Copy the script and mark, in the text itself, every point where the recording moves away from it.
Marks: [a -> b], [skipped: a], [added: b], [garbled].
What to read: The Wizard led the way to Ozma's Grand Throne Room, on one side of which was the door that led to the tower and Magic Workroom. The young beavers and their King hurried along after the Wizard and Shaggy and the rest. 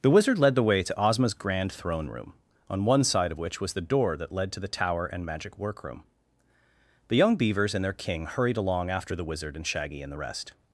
The Wizard led the way to Ozma's Grand Throne Room, on one side of which was the door that led to the tower and Magic Workroom. The young beavers and their King hurried along after the Wizard and Shaggy and the rest.